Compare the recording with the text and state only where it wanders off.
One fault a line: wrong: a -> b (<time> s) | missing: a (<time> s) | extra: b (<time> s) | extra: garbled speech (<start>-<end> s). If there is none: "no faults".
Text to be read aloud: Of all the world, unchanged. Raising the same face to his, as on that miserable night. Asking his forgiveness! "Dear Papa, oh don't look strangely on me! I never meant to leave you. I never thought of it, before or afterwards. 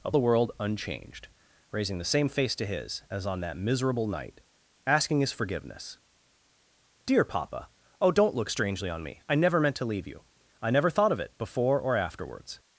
missing: all (0.1 s)